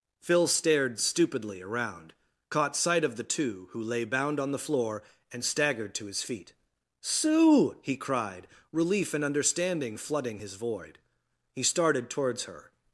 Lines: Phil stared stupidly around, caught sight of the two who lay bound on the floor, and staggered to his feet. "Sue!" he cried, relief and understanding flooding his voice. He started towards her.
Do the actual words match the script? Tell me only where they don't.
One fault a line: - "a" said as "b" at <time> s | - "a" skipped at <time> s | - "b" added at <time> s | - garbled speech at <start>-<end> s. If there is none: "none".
- "voice" said as "void" at 10.5 s